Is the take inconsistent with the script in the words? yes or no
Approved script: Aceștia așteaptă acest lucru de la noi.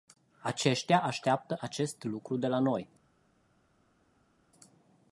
no